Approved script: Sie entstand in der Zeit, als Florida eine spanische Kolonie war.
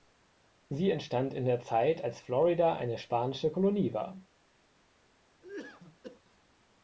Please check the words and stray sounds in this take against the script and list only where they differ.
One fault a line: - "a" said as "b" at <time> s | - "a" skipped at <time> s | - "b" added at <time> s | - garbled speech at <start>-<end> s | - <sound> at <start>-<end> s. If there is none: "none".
- cough at 5.4-6.2 s